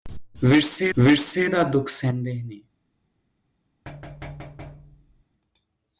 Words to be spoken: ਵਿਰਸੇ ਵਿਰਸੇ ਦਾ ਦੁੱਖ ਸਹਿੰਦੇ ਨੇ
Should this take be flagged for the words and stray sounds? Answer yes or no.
yes